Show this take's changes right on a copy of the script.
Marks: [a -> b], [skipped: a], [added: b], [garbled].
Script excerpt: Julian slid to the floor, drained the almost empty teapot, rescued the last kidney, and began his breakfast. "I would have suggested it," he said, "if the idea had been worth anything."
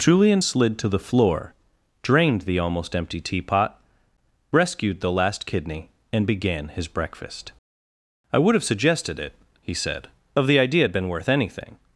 Julian slid to the floor, drained the almost empty teapot, rescued the last kidney, and began his breakfast. "I would have suggested it," he said, ["if -> of] the idea had been worth anything."